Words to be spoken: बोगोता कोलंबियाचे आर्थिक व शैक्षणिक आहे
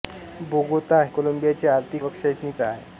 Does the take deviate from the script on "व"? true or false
false